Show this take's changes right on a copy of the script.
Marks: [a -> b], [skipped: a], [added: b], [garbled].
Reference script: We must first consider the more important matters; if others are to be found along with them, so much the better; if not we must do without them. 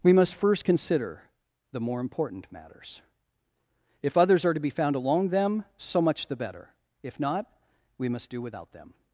We must first consider the more important matters; if others are to be found along [skipped: with] them, so much the better; if not we must do without them.